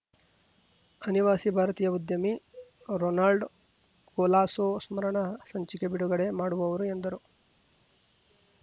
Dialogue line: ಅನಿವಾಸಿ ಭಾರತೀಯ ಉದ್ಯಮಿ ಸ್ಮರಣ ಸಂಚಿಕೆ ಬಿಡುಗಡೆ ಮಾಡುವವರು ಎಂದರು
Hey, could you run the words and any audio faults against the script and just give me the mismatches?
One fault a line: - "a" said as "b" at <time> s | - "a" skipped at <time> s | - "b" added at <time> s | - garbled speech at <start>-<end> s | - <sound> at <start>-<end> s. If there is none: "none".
- "ರೊನಾಲ್ಡ್ ಕೊಲಾಸೊ" added at 3.0 s